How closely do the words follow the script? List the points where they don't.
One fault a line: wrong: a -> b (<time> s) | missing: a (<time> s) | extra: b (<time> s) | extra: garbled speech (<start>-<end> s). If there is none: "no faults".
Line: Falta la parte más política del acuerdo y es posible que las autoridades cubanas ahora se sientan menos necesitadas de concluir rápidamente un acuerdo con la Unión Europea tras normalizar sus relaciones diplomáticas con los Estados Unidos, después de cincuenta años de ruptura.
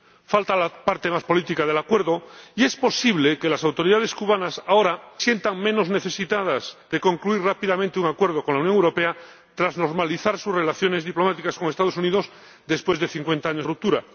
missing: se (5.0 s)
missing: de (13.7 s)